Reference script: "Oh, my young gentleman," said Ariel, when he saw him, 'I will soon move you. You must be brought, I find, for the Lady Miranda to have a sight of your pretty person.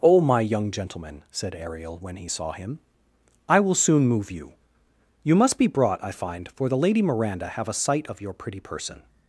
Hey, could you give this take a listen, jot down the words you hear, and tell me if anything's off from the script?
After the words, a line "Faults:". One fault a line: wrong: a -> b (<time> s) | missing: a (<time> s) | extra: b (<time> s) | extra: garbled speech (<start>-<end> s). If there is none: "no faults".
"Oh, my young gentleman," said Ariel, when he saw him, 'I will soon move you. You must be brought, I find, for the Lady Miranda have a sight of your pretty person.
Faults:
missing: to (7.5 s)